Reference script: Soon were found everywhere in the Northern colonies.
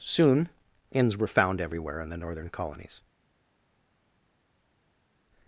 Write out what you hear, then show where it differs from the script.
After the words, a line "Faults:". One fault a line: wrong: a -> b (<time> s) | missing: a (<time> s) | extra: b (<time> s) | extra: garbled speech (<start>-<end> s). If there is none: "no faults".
Soon inns were found everywhere in the Northern colonies.
Faults:
extra: inns (0.9 s)